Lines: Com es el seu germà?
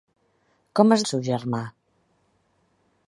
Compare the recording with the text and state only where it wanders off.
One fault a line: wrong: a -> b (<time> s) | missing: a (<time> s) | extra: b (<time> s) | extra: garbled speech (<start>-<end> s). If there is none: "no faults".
no faults